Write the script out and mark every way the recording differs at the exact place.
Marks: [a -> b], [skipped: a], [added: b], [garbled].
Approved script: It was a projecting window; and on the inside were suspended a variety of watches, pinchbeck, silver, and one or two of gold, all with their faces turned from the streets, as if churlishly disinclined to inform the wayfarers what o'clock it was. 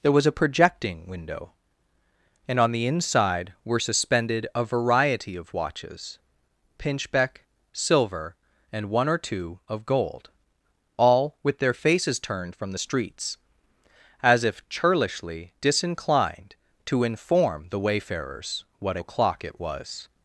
[It -> There] was a projecting window; and on the inside were suspended a variety of watches, pinchbeck, silver, and one or two of gold, all with their faces turned from the streets, as if churlishly disinclined to inform the wayfarers what o'clock it was.